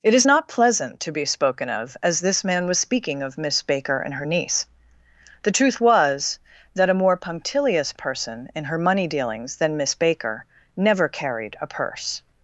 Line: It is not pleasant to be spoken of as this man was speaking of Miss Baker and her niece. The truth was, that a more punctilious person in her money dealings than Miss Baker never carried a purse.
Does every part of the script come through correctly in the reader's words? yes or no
yes